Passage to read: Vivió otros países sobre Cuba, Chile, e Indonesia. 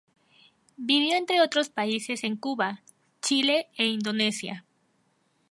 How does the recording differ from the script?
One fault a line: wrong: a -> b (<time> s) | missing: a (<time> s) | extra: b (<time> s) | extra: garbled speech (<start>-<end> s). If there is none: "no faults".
extra: entre (1.1 s)
wrong: sobre -> en (2.2 s)